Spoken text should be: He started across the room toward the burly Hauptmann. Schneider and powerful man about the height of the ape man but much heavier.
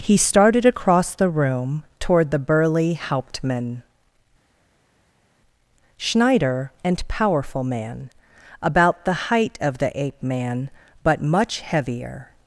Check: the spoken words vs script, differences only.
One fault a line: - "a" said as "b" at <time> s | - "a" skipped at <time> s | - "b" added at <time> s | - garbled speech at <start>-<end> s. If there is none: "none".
none